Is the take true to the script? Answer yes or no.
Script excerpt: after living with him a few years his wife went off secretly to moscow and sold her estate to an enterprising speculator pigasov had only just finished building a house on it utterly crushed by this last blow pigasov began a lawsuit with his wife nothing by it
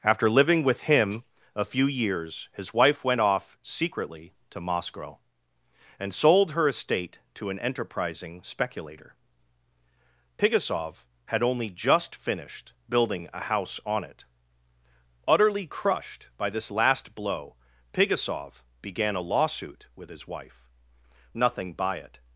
yes